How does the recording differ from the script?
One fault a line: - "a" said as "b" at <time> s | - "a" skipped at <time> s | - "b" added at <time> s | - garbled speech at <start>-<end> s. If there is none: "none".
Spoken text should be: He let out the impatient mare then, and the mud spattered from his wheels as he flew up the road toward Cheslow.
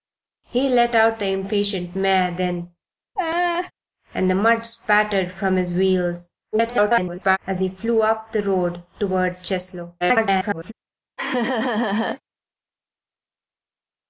- garbled speech at 6.5-7.4 s
- garbled speech at 10.0-10.7 s